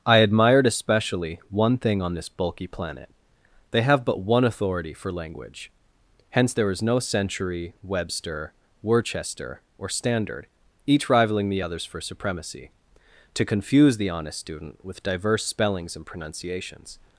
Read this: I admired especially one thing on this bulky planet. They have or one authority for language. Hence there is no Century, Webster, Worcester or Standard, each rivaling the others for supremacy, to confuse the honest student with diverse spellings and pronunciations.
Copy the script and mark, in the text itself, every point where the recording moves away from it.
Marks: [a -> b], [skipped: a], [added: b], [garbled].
I admired especially one thing on this bulky planet. They have [or -> but] one authority for language. Hence there is no Century, Webster, Worcester or Standard, each rivaling the others for supremacy, to confuse the honest student with diverse spellings and pronunciations.